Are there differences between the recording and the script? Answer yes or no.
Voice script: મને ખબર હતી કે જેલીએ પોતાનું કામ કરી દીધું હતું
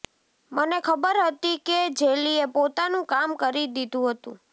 no